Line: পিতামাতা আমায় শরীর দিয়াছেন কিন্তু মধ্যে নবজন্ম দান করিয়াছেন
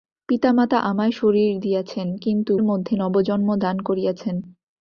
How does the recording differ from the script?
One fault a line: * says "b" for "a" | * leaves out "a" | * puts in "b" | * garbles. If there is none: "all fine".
all fine